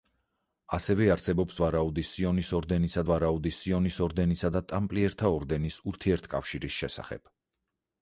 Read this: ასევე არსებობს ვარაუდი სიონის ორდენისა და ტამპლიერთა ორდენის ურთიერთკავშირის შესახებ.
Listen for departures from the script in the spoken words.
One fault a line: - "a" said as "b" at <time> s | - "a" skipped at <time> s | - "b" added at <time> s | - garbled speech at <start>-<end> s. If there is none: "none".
- "ვარაუდი სიონის ორდენისა" added at 3.1 s